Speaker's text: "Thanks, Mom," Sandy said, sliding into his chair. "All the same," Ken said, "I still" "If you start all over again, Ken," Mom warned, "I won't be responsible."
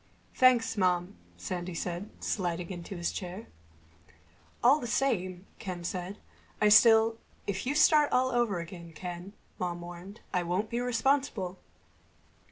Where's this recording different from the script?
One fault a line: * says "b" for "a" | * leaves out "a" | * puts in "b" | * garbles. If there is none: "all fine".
all fine